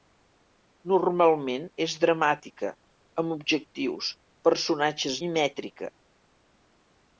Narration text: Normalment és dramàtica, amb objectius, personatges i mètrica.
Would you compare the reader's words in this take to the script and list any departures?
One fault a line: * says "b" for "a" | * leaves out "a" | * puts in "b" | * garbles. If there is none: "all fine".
all fine